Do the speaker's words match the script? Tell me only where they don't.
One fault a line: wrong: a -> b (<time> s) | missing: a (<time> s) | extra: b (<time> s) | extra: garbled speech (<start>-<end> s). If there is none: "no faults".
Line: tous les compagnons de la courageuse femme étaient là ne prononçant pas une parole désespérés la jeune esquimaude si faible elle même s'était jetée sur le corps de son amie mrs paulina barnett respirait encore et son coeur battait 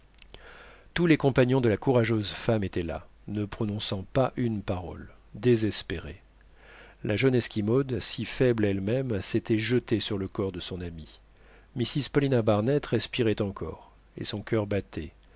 no faults